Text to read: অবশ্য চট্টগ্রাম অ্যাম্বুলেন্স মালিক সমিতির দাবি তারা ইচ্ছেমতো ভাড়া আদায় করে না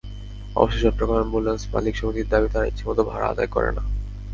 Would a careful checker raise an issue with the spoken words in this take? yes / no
no